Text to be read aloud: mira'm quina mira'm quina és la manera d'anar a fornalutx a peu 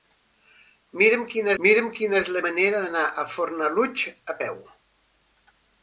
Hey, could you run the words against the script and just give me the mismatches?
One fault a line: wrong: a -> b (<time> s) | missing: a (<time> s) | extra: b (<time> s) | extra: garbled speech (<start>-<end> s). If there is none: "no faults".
no faults